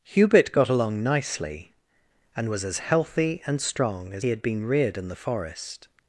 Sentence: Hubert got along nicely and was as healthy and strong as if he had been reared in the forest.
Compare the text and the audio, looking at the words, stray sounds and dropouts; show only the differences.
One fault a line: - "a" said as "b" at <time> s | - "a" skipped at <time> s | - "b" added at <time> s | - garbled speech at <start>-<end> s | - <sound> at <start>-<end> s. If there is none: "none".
- "if" skipped at 4.2 s